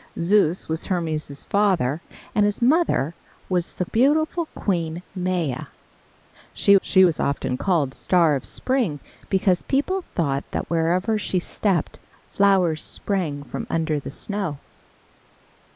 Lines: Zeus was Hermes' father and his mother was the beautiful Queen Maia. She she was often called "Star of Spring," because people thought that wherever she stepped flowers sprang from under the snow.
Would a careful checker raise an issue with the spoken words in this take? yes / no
no